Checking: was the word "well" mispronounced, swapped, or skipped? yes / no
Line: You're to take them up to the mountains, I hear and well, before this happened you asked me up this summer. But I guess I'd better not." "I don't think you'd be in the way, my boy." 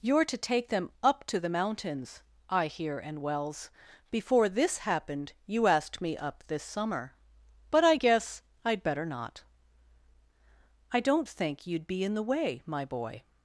yes